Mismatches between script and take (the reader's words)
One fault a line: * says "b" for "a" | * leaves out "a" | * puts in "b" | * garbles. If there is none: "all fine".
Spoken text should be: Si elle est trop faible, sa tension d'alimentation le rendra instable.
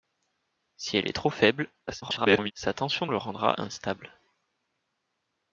* garbles
* leaves out "d'alimentation"